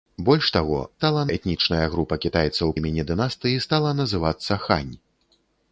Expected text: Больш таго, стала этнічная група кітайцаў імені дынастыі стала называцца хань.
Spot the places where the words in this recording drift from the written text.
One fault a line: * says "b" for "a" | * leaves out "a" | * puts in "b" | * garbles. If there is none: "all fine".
all fine